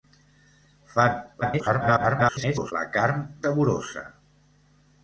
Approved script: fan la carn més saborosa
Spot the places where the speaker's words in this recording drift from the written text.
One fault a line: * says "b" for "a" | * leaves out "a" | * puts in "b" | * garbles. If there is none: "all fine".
* garbles
* leaves out "més"